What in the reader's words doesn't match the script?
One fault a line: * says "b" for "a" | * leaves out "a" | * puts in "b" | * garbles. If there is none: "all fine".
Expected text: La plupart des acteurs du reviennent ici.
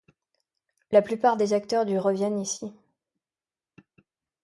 all fine